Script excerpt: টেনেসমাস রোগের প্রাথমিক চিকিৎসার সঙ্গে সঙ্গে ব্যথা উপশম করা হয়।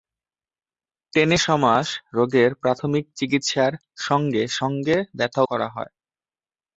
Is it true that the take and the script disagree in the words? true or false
true